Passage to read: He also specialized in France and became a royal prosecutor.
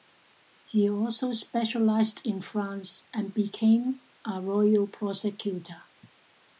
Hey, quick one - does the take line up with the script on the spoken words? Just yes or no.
yes